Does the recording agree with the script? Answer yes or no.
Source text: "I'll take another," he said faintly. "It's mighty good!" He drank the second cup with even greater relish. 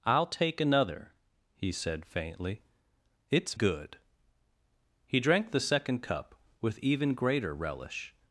no